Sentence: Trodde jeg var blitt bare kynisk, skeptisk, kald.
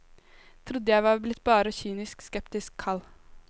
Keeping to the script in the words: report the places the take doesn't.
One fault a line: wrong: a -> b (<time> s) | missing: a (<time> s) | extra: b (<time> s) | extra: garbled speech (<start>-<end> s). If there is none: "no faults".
no faults